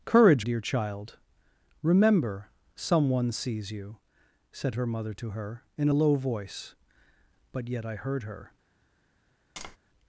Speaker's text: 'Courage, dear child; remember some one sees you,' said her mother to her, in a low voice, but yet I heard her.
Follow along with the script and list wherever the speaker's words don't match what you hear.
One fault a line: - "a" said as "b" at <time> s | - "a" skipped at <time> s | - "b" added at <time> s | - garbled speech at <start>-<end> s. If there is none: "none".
none